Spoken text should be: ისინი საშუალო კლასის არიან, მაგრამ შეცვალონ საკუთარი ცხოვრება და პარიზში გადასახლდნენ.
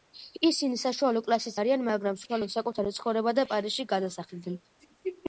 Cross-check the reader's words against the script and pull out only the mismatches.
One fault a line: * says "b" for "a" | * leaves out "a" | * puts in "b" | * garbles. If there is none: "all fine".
all fine